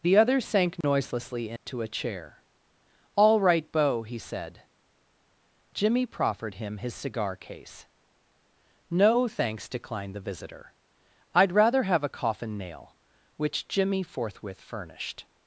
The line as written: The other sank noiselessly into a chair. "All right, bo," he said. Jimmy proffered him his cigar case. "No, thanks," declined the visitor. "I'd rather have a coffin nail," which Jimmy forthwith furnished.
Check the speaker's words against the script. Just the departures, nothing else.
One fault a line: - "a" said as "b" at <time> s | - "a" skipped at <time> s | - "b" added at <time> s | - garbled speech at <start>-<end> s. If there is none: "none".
none